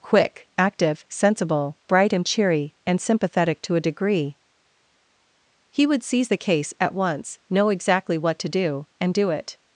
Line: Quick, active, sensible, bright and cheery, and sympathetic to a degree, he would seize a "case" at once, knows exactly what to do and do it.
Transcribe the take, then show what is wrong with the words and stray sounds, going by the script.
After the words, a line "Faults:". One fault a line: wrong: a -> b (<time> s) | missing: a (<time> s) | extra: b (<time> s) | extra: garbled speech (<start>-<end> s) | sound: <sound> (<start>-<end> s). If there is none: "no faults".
Quick, active, sensible, bright and cheery, and sympathetic to a degree, he would seize the "case" at once, know exactly what to do and do it.
Faults:
wrong: a -> the (6.3 s)
wrong: knows -> know (7.5 s)